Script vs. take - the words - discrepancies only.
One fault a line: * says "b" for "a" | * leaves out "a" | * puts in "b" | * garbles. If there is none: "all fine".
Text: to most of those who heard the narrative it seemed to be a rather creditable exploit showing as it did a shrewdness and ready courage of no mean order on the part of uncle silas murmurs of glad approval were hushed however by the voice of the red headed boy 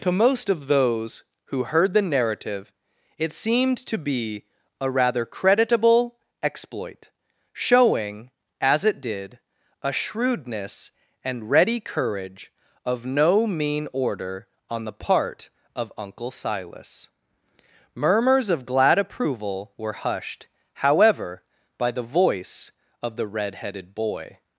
all fine